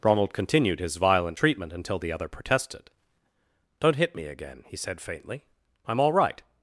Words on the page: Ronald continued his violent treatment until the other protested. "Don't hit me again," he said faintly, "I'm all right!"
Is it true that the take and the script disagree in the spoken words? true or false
false